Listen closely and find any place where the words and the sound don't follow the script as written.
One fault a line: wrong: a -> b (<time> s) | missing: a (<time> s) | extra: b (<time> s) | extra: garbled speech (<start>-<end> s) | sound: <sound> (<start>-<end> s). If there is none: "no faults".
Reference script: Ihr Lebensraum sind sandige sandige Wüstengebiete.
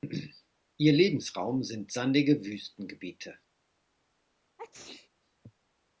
missing: sandige (2.4 s)
sound: sneeze (4.6-5.1 s)